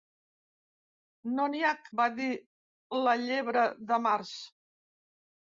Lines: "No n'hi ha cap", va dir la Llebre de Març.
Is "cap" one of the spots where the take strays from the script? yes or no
yes